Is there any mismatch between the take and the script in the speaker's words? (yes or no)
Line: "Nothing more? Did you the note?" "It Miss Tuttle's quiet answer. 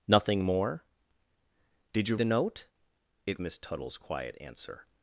no